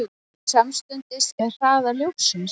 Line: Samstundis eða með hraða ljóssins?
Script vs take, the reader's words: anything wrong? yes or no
yes